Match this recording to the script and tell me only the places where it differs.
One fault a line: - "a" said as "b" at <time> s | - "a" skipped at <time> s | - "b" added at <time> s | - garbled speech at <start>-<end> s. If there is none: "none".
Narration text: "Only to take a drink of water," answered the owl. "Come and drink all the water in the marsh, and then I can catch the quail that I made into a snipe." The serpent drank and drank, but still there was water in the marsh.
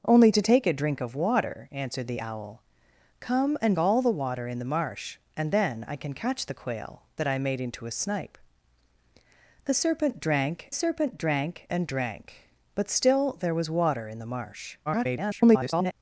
- "drink" skipped at 3.8 s
- "serpent drank" added at 10.7 s
- garbled speech at 14.9-15.9 s